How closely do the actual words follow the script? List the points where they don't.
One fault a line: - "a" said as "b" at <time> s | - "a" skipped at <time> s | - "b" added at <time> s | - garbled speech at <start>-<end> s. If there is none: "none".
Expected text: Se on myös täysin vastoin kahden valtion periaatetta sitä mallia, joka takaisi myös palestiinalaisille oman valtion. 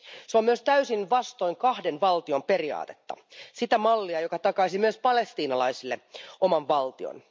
none